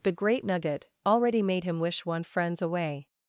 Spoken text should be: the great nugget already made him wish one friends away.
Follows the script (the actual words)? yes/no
yes